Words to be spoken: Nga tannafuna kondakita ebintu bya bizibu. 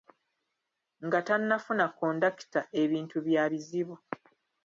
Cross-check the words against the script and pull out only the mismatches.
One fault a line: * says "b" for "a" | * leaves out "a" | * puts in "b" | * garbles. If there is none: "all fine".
all fine